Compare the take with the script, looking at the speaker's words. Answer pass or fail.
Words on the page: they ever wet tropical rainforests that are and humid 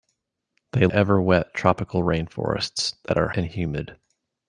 pass